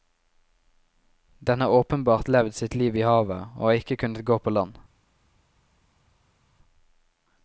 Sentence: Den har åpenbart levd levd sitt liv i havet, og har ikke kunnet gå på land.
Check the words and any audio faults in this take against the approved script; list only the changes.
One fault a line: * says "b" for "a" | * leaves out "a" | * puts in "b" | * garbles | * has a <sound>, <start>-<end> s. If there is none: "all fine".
* leaves out "levd"